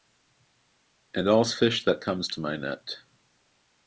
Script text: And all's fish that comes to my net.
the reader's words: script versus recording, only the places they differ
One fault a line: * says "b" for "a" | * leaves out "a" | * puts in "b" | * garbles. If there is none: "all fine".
all fine